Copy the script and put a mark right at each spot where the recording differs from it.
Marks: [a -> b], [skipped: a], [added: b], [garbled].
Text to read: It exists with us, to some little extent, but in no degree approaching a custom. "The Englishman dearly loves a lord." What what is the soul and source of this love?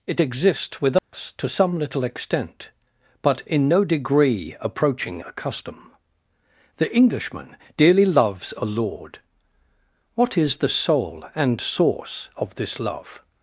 It exists with us, to some little extent, but in no degree approaching a custom. "The Englishman dearly loves a lord." What [skipped: what] is the soul and source of this love?